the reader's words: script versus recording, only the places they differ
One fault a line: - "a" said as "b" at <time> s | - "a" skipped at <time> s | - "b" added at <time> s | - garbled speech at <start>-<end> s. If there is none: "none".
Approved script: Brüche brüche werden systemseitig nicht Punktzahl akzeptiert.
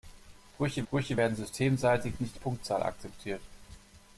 none